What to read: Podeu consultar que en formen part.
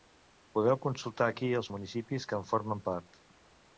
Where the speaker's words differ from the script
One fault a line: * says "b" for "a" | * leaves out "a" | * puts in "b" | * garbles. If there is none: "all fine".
* puts in "aquí els municipis"